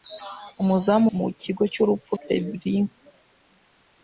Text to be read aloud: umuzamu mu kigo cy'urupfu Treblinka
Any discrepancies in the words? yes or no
no